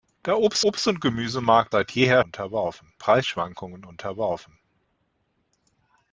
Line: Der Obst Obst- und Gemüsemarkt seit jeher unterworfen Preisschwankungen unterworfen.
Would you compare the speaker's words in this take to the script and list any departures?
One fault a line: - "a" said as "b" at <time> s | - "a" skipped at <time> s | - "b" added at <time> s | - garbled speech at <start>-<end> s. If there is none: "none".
none